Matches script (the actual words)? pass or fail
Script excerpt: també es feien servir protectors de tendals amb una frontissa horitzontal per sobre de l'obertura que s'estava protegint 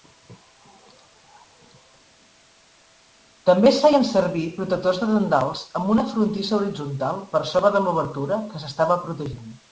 pass